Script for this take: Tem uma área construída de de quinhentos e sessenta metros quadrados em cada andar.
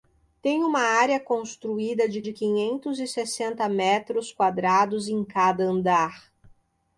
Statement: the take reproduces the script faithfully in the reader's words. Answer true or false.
true